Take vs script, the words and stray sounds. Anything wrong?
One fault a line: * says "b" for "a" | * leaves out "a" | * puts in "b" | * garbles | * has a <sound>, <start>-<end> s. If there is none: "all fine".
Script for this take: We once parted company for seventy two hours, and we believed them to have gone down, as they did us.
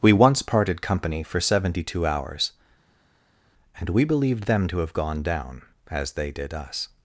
all fine